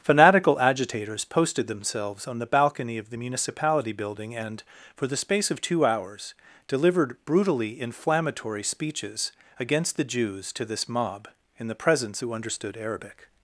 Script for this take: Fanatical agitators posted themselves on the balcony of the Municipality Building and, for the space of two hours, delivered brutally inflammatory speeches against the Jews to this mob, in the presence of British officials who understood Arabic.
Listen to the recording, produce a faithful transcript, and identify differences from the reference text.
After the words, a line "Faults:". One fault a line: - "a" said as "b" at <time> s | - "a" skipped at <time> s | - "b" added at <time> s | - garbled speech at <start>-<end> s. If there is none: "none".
Fanatical agitators posted themselves on the balcony of the Municipality Building and, for the space of two hours, delivered brutally inflammatory speeches against the Jews to this mob, in the presence who understood Arabic.
Faults:
- "of British officials" skipped at 12.2 s